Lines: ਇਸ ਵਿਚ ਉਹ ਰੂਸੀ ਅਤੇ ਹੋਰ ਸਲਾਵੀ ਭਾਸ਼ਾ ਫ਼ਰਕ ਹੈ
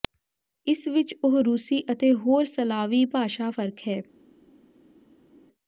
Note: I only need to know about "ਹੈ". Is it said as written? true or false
true